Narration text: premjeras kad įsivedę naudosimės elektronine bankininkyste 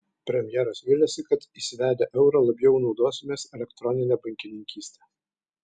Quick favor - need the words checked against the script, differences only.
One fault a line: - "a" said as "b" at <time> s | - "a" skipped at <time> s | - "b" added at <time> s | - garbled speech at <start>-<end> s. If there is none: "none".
- "viliasi" added at 0.9 s
- "eurą labiau" added at 2.2 s